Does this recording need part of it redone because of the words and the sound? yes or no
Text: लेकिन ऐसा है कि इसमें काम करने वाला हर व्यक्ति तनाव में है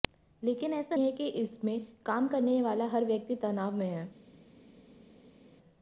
no